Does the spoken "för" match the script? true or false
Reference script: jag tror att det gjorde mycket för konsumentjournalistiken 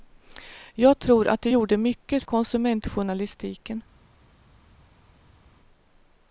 false